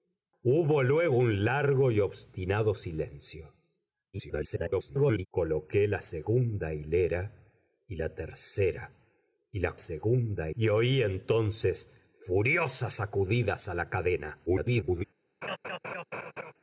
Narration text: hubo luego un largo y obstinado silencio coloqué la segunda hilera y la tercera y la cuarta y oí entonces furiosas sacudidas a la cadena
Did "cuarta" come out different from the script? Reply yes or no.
yes